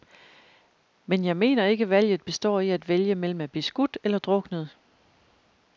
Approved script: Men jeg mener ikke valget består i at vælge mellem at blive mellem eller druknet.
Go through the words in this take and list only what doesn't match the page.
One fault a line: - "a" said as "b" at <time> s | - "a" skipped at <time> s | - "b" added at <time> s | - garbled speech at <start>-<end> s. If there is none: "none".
- "mellem" said as "skudt" at 3.6 s